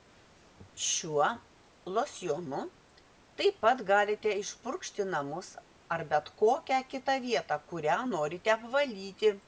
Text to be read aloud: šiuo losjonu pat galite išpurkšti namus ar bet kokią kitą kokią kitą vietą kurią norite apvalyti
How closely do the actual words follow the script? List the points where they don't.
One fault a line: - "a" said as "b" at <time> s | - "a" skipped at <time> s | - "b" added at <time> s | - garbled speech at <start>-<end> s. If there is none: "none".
- "taip" added at 3.4 s
- "kokią kitą" skipped at 7.1 s